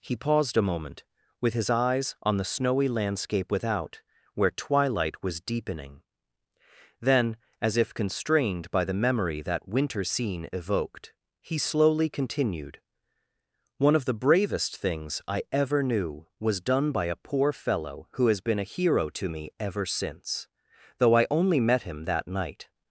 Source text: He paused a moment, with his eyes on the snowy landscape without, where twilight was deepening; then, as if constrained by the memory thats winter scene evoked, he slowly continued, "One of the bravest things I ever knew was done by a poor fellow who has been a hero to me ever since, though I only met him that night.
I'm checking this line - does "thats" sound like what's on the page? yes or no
no